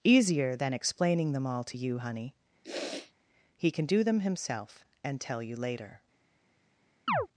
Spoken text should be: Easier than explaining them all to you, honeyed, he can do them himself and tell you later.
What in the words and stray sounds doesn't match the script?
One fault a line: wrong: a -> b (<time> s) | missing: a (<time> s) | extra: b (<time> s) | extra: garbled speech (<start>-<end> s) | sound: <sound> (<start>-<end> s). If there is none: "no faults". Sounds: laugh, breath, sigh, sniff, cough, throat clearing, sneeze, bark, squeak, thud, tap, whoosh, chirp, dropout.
wrong: honeyed -> honey (2.0 s)
sound: sniff (2.6-3.1 s)
sound: chirp (7.1-7.3 s)